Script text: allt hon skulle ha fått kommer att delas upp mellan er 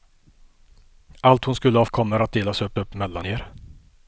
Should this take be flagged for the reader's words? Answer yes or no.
yes